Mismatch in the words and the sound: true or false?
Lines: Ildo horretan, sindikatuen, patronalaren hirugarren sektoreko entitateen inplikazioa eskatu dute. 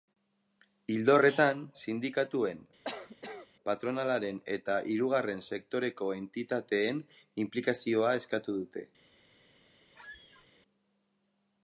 true